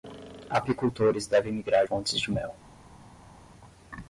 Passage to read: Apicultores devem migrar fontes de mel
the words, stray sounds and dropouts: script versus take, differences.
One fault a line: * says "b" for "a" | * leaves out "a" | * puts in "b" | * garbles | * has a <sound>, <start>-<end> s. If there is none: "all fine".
all fine